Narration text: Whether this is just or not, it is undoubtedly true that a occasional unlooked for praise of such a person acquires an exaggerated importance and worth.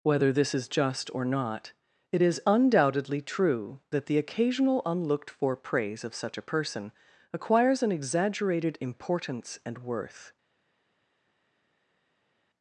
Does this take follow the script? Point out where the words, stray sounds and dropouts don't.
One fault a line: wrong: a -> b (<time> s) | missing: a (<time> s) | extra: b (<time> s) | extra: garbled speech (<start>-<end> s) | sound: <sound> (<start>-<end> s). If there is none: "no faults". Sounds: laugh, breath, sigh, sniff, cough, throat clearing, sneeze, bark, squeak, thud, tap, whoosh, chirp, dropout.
wrong: a -> the (4.1 s)